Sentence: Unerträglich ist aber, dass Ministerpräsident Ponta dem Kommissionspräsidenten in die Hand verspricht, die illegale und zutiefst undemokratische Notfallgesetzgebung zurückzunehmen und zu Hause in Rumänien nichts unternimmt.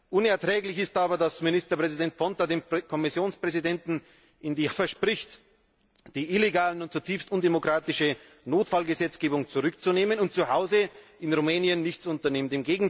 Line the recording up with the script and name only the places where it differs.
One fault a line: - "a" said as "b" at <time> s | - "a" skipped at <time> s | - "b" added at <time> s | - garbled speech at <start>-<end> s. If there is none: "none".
- "Hand" skipped at 4.7 s